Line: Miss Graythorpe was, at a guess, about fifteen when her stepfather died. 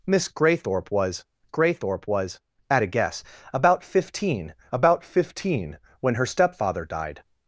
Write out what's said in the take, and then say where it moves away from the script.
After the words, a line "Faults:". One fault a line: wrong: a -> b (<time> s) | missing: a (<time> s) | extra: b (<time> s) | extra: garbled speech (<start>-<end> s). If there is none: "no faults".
Miss Graythorpe was Graythorpe was, at a guess, about fifteen about fifteen when her stepfather died.
Faults:
extra: Graythorpe was (1.5 s)
extra: about fifteen (4.7 s)